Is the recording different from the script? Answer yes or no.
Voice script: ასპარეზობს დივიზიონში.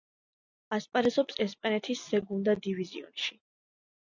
yes